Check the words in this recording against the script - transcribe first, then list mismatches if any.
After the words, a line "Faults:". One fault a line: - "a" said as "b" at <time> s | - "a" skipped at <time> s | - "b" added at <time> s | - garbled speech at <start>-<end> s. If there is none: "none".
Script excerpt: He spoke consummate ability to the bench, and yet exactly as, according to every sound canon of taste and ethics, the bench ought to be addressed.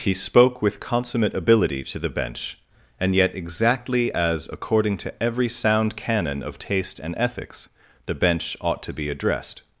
He spoke with consummate ability to the bench, and yet exactly as, according to every sound canon of taste and ethics, the bench ought to be addressed.
Faults:
- "with" added at 0.6 s